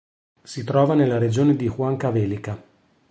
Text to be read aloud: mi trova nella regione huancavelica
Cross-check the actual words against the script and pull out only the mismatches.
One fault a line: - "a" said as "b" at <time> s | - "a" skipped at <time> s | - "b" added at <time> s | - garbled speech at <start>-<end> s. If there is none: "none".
- "mi" said as "si" at 0.4 s
- "di" added at 1.6 s